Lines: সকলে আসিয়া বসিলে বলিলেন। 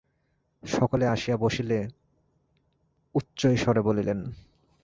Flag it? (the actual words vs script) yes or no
yes